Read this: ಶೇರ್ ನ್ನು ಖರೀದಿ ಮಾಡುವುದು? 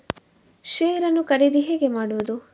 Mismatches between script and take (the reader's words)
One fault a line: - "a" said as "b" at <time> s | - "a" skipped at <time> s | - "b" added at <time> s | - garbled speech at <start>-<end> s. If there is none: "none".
- "ಹೇಗೆ" added at 1.6 s